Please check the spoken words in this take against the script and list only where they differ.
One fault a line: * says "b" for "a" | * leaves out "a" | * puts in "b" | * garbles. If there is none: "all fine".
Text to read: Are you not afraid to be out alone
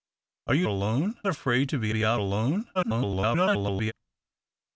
* says "alone" for "not"
* puts in "be"
* garbles